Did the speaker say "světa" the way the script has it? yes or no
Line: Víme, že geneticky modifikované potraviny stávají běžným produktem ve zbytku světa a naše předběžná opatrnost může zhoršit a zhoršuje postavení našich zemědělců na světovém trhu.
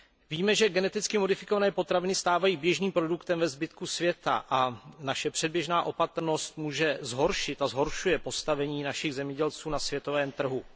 yes